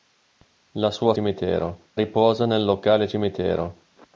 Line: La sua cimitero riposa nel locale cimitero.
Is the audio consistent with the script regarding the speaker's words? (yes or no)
yes